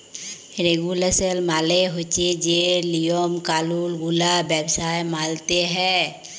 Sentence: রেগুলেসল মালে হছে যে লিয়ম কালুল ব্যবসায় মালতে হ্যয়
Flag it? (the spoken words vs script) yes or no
yes